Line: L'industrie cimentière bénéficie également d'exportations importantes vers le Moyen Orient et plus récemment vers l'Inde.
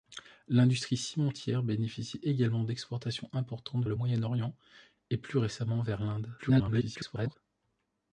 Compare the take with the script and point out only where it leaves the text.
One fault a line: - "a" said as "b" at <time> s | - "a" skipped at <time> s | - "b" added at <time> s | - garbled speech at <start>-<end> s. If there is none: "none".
- "vers" skipped at 3.9 s
- garbled speech at 6.4-7.4 s